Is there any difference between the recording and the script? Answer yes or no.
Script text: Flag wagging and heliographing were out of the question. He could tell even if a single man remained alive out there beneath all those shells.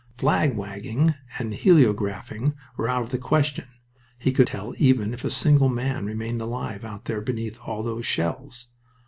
no